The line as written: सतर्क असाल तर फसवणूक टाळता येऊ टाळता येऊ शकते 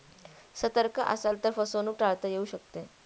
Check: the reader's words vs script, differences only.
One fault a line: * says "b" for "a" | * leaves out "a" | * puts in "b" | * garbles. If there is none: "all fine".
* leaves out "टाळता येऊ"